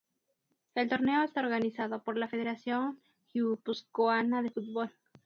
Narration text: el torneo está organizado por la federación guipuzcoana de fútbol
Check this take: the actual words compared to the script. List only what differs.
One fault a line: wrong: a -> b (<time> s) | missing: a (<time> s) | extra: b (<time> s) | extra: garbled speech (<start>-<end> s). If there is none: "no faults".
no faults